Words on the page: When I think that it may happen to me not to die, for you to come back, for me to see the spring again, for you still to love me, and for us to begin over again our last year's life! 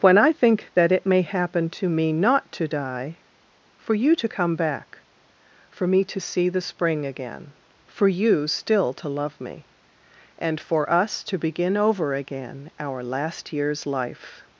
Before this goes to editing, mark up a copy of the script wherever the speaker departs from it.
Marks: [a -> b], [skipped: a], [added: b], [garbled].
When I think that it may happen to me not to die, for you to come back, for me to see the spring again, for you still to love me, and for us to begin over again our last year's life!